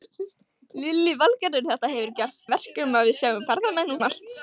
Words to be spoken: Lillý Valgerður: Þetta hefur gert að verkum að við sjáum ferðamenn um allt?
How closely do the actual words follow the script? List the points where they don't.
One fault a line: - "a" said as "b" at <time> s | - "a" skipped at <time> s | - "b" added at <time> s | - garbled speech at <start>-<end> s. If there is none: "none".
none